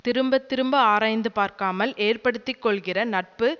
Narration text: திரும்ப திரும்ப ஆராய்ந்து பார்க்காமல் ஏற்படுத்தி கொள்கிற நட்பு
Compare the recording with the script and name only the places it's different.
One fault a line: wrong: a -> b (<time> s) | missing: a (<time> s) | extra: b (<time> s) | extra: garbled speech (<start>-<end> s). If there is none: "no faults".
no faults